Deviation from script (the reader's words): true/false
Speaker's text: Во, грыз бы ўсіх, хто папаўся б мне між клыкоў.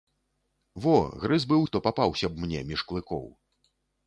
true